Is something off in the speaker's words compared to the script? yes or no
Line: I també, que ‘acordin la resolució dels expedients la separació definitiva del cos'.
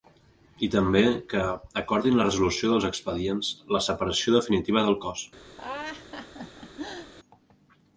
no